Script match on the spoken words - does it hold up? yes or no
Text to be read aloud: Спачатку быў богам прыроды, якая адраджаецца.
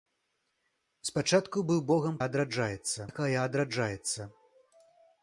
no